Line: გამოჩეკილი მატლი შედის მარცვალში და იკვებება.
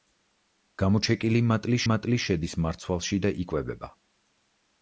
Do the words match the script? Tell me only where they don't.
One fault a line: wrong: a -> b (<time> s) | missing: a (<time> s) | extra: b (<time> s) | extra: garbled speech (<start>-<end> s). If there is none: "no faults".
extra: მატლი (1.9 s)